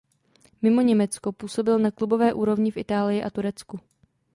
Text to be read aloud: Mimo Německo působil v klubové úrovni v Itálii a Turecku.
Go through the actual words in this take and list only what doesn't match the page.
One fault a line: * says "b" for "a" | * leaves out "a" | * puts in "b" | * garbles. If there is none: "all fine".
* says "na" for "v"